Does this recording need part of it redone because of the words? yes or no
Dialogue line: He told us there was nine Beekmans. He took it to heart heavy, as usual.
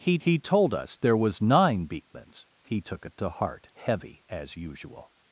yes